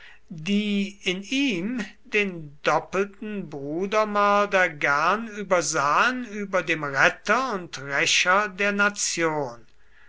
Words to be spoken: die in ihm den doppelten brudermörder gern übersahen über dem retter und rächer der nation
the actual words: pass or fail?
pass